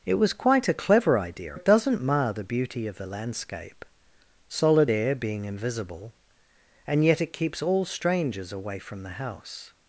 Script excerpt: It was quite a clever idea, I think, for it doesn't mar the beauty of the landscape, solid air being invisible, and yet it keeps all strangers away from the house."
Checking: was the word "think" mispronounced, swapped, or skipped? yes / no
yes